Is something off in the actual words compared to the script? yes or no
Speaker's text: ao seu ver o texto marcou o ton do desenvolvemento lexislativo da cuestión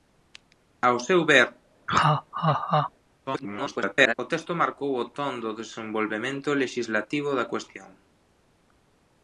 yes